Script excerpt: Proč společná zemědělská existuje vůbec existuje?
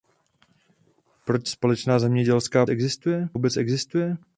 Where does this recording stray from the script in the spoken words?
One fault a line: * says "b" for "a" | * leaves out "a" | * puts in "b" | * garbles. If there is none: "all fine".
all fine